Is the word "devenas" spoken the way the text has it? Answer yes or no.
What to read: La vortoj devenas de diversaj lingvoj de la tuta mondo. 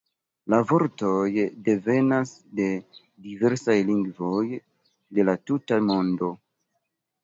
yes